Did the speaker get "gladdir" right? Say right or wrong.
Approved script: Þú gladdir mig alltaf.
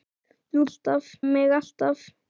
wrong